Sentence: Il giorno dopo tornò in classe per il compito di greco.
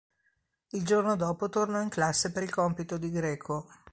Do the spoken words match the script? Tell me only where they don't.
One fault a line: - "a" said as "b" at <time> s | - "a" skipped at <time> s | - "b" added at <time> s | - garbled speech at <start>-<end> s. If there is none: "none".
none